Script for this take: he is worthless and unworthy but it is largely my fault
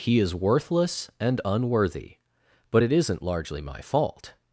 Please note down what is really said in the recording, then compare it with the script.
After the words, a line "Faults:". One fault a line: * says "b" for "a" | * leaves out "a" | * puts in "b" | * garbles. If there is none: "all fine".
he is worthless and unworthy but it isn't largely my fault
Faults:
* says "isn't" for "is"